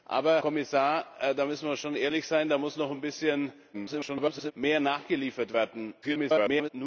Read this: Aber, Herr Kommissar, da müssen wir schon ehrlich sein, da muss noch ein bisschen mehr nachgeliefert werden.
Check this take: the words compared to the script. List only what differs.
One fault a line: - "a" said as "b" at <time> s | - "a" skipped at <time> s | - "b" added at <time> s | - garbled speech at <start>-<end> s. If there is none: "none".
- "Herr" skipped at 0.4 s
- garbled speech at 3.7-4.5 s
- garbled speech at 6.0-6.7 s